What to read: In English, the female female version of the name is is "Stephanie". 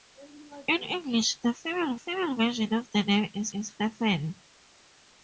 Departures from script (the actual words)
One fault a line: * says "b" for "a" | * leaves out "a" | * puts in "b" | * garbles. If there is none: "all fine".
all fine